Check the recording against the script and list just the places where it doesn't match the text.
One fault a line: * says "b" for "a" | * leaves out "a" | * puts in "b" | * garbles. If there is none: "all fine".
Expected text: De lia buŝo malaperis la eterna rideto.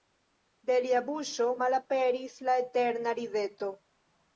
all fine